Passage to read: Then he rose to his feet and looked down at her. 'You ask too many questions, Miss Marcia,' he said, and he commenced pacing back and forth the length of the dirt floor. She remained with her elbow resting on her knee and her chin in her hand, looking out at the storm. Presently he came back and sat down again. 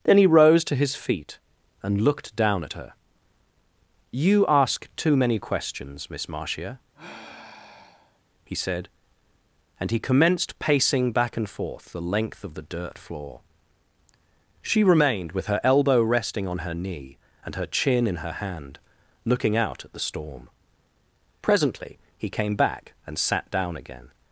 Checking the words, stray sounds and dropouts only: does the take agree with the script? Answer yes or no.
no